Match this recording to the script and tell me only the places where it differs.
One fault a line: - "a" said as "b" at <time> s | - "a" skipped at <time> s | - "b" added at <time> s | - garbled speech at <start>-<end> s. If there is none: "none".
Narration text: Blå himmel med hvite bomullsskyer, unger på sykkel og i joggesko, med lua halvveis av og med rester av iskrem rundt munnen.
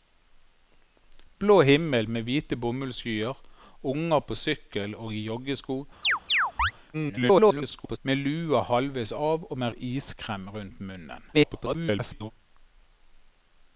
- garbled speech at 6.9-8.0 s
- "rester" skipped at 9.7 s
- garbled speech at 11.3-12.3 s